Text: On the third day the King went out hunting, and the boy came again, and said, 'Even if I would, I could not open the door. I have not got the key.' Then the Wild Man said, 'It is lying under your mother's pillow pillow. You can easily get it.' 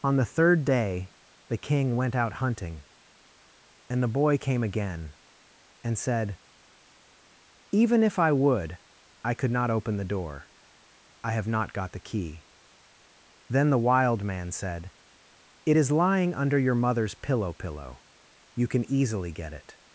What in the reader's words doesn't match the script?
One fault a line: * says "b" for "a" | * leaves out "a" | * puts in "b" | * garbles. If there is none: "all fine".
all fine